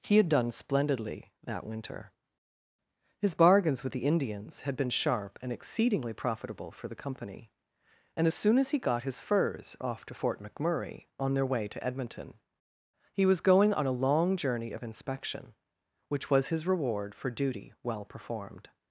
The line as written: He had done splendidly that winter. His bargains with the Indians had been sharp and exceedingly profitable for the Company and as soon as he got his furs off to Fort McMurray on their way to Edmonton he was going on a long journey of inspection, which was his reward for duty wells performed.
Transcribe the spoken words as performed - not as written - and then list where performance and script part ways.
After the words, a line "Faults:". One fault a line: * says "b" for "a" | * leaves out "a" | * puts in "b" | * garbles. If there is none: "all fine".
He had done splendidly that winter. His bargains with the Indians had been sharp and exceedingly profitable for the Company and as soon as he got his furs off to Fort McMurray on their way to Edmonton he was going on a long journey of inspection, which was his reward for duty well performed.
Faults:
* says "well" for "wells"